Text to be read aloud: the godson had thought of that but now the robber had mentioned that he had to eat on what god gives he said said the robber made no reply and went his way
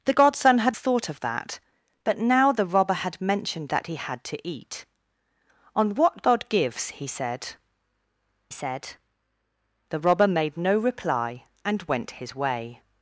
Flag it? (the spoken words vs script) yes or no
no